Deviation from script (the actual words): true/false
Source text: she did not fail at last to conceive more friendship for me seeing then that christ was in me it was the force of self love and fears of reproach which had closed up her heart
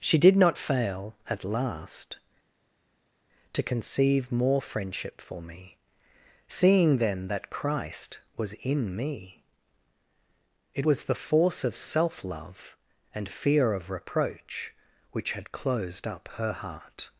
true